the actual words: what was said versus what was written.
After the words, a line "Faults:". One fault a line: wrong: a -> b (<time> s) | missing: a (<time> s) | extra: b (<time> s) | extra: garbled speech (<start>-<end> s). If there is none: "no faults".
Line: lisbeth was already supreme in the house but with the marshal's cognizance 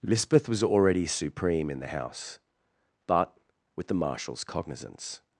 lisbeth was already supreme in the house but with the marshal's cognizance
Faults:
no faults